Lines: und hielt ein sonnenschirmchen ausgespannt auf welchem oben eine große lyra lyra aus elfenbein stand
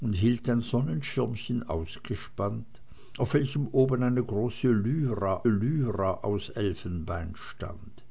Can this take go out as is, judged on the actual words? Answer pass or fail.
pass